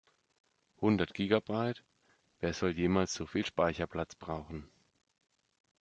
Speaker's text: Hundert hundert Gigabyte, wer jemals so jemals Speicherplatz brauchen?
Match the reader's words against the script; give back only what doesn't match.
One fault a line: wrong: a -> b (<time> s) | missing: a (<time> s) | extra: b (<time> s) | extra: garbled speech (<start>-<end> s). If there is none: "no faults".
missing: hundert (1.1 s)
extra: soll (2.5 s)
wrong: jemals -> viel (3.3 s)